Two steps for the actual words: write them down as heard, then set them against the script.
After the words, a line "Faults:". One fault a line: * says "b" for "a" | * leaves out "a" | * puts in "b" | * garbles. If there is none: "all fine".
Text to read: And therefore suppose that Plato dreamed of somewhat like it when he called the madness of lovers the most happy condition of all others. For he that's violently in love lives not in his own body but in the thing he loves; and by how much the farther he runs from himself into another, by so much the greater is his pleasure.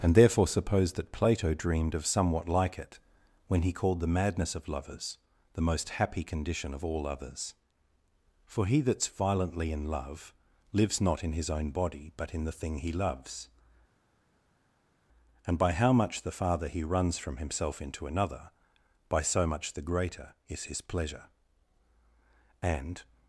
And therefore suppose that Plato dreamed of somewhat like it when he called the madness of lovers the most happy condition of all others. For he that's violently in love lives not in his own body but in the thing he loves; and by how much the farther he runs from himself into another, by so much the greater is his pleasure. And
Faults:
* puts in "And"